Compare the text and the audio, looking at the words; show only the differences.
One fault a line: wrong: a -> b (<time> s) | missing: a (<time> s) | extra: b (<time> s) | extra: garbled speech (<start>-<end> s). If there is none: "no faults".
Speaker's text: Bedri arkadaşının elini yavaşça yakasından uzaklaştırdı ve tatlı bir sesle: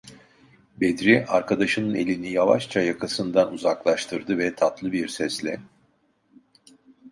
no faults